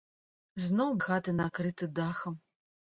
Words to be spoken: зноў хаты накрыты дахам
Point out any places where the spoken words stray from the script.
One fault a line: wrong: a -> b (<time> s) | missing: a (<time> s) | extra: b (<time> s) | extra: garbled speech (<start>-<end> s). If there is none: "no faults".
no faults